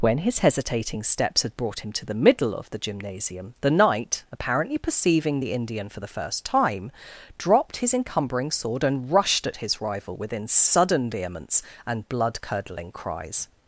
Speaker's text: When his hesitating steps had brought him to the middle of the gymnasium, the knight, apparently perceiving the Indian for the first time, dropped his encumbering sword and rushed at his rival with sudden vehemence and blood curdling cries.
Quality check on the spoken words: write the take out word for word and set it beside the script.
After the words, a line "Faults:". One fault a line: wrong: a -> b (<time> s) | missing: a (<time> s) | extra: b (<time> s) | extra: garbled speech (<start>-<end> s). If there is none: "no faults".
When his hesitating steps had brought him to the middle of the gymnasium, the knight, apparently perceiving the Indian for the first time, dropped his encumbering sword and rushed at his rival within sudden vehemence and blood curdling cries.
Faults:
wrong: with -> within (10.1 s)